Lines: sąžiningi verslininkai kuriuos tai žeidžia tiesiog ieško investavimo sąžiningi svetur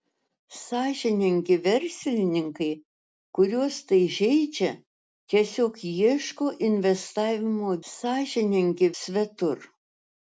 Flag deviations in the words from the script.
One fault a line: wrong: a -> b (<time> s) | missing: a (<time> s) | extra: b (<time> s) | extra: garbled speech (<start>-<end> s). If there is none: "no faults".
no faults